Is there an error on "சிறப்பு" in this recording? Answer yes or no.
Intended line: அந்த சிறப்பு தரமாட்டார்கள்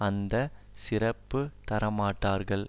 no